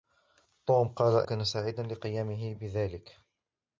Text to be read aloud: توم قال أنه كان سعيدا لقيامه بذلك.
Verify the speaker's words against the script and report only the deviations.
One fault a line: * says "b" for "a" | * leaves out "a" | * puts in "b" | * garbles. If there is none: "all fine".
* leaves out "أنه"